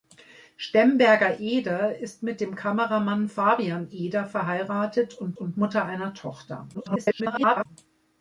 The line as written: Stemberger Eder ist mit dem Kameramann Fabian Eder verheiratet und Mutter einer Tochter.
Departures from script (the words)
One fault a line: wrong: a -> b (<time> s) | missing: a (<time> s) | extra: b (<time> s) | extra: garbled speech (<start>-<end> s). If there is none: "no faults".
extra: und (5.3 s)
extra: garbled speech (6.7-7.7 s)